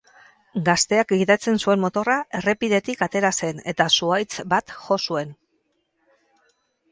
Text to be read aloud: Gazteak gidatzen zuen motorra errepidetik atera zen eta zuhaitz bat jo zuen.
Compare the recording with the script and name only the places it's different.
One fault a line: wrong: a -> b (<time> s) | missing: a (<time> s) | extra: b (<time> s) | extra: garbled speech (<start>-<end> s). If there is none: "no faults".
no faults